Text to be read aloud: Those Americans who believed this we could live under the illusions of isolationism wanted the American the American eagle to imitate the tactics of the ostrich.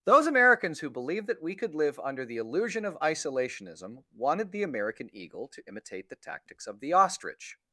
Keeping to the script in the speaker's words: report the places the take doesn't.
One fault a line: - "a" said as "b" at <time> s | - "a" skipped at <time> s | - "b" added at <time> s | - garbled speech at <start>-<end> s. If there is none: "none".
- "this" said as "that" at 1.3 s
- "illusions" said as "illusion" at 2.4 s
- "the American" skipped at 5.1 s